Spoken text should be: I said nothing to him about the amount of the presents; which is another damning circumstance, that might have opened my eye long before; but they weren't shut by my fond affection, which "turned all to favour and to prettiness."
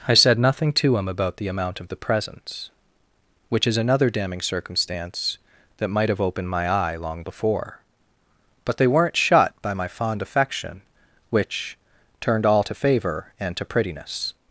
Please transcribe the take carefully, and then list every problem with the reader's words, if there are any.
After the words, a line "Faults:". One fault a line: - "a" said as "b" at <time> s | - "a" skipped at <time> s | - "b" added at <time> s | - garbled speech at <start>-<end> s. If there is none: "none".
I said nothing to him about the amount of the presents; which is another damning circumstance, that might have opened my eye long before; but they weren't shut by my fond affection, which "turned all to favour and to prettiness."
Faults:
none